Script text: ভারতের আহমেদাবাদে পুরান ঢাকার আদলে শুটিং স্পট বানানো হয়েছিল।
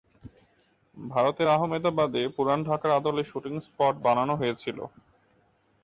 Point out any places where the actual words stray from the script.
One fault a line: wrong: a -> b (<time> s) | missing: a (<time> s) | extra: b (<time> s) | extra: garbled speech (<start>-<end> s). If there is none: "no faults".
no faults